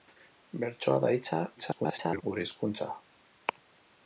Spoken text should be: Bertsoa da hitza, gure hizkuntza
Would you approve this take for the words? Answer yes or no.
no